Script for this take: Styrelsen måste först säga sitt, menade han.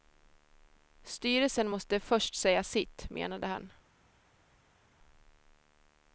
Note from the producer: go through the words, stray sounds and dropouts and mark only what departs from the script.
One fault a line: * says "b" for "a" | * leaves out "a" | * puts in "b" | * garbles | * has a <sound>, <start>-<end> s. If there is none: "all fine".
all fine